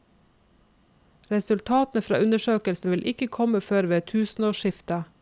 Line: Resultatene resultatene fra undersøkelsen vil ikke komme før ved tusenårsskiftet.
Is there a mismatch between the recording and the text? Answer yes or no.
yes